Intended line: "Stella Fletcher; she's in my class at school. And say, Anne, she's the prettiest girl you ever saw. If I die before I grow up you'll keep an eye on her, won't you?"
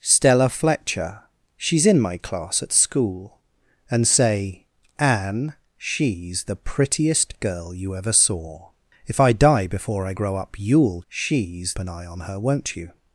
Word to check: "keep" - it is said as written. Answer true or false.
false